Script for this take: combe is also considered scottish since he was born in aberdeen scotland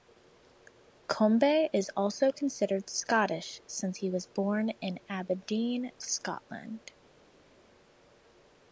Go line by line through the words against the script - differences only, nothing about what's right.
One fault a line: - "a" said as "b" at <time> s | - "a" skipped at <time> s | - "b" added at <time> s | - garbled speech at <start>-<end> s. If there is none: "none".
none